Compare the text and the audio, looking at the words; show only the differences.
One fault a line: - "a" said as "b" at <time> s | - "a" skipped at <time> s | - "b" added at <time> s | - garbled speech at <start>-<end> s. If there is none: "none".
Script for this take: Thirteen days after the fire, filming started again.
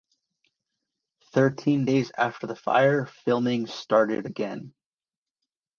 none